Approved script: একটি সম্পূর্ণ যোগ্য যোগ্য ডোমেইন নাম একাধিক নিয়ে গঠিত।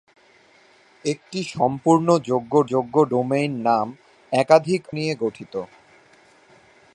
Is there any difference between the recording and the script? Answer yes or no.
no